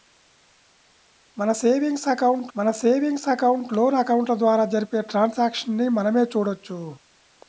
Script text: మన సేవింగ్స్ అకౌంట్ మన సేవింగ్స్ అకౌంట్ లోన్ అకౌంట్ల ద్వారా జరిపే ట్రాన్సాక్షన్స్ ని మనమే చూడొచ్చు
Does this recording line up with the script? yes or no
yes